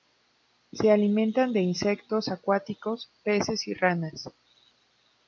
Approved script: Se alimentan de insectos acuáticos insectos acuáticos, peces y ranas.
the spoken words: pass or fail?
fail